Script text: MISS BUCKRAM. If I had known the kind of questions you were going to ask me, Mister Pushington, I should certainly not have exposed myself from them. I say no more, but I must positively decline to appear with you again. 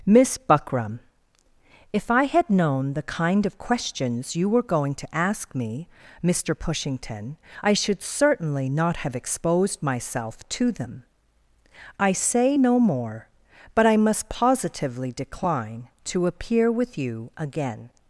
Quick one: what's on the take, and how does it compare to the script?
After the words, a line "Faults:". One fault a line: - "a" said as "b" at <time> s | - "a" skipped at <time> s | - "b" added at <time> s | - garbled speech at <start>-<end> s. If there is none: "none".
MISS BUCKRAM. If I had known the kind of questions you were going to ask me, Mister Pushington, I should certainly not have exposed myself to them. I say no more, but I must positively decline to appear with you again.
Faults:
- "from" said as "to" at 10.5 s